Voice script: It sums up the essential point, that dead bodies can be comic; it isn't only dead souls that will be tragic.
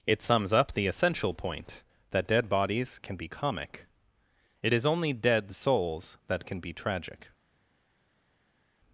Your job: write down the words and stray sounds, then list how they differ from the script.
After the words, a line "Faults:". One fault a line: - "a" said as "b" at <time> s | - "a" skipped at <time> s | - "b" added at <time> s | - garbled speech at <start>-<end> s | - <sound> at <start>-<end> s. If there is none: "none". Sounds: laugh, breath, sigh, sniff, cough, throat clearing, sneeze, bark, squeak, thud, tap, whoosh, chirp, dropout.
It sums up the essential point, that dead bodies can be comic; it is only dead souls that can be tragic.
Faults:
- "isn't" said as "is" at 4.7 s
- "will" said as "can" at 6.5 s